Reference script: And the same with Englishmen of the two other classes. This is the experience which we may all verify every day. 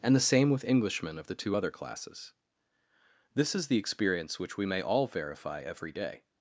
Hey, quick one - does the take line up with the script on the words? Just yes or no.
yes